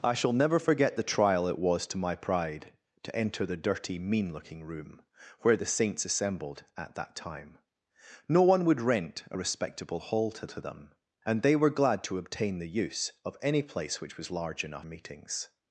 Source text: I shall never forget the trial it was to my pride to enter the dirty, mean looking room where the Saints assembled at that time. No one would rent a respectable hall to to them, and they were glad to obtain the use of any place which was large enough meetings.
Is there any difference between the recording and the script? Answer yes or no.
no